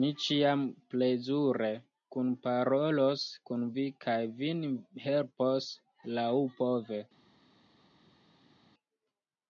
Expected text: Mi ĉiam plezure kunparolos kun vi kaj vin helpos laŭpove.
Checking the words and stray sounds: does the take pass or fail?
pass